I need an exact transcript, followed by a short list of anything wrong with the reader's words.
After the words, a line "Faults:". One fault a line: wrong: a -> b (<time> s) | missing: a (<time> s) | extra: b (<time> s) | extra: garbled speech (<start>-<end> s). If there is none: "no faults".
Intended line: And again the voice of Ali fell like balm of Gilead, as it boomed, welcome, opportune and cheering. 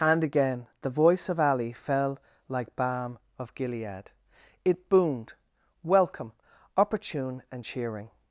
And again the voice of Ali fell like balm of Gilead, it boomed, welcome, opportune and cheering.
Faults:
missing: as (4.1 s)